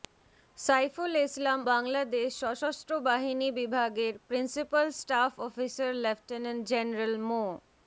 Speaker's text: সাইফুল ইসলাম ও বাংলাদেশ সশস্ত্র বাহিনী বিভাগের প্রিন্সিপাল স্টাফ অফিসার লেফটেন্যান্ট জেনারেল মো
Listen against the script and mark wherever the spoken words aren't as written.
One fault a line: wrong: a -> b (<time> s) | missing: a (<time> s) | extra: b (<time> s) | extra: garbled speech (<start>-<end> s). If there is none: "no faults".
missing: ও (1.6 s)